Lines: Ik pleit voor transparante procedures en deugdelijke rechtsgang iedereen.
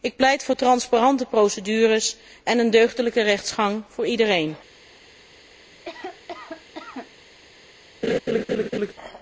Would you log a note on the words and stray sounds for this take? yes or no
yes